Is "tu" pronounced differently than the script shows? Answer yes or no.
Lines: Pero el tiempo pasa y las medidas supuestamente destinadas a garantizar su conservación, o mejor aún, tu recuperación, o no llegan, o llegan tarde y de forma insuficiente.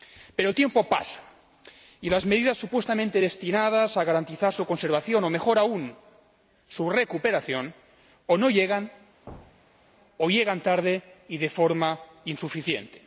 yes